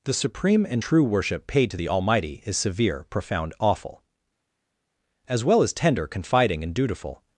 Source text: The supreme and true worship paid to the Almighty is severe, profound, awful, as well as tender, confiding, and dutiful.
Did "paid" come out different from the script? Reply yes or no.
no